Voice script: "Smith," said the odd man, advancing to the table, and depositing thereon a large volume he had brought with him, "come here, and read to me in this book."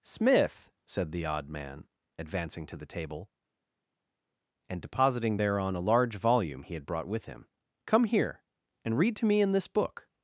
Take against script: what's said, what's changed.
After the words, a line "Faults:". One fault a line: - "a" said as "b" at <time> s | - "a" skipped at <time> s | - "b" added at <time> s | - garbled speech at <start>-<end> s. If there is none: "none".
"Smith," said the odd man, advancing to the table, and depositing thereon a large volume he had brought with him, "come here, and read to me in this book."
Faults:
none